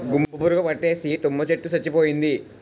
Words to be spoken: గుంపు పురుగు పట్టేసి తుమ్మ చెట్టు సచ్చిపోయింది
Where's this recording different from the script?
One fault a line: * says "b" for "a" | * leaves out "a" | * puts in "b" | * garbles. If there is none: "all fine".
all fine